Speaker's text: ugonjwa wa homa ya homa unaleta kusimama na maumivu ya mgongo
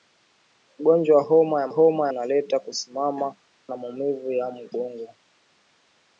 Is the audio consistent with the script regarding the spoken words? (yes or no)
yes